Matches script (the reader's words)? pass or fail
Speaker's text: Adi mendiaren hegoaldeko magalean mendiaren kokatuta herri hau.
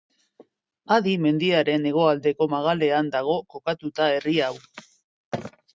fail